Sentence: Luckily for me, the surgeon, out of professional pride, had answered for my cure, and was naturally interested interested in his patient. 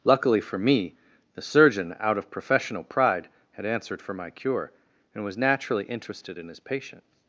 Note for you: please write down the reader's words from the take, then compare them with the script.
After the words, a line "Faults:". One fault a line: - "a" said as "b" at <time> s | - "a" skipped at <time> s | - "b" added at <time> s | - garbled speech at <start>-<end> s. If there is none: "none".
Luckily for me, the surgeon, out of professional pride, had answered for my cure, and was naturally interested in his patient.
Faults:
- "interested" skipped at 6.4 s